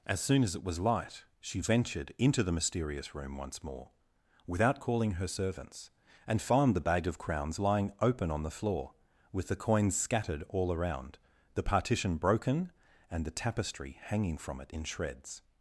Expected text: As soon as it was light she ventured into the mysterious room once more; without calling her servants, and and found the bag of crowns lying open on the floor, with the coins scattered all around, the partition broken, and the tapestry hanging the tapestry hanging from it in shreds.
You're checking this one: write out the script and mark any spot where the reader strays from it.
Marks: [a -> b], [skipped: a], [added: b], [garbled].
As soon as it was light she ventured into the mysterious room once more; without calling her servants, and [skipped: and] found the bag of crowns lying open on the floor, with the coins scattered all around, the partition broken, and the tapestry hanging [skipped: the tapestry hanging] from it in shreds.